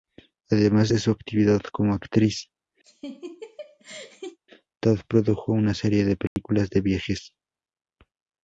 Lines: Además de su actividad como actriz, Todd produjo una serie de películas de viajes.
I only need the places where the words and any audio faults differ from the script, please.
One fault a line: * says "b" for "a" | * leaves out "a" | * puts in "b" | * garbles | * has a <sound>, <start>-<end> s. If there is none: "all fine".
* has a laugh, 2.8-4.4 s
* has a dropout, 6.3-6.4 s